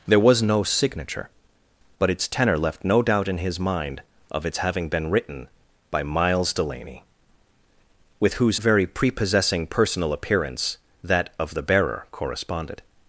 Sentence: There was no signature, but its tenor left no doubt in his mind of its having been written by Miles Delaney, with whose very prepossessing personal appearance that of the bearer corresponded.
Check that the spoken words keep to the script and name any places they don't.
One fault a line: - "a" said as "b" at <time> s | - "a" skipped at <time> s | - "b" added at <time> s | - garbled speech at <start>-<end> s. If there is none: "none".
none